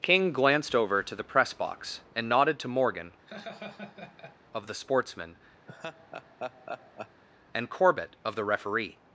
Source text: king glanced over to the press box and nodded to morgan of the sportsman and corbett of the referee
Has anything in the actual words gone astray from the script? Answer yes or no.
no